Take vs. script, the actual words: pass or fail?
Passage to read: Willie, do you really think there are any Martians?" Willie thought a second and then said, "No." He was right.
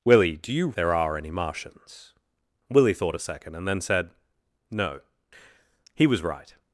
fail